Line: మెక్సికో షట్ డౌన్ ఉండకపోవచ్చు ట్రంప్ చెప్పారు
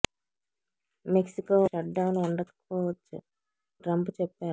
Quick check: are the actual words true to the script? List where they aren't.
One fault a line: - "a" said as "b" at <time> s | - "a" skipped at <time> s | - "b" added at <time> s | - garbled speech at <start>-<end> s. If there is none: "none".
none